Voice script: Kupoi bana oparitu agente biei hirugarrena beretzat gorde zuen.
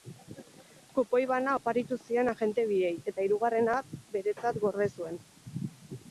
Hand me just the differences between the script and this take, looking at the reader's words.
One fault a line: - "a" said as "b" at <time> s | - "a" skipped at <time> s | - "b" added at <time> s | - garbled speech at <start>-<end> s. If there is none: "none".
- "zien" added at 2.0 s
- "eta" added at 3.1 s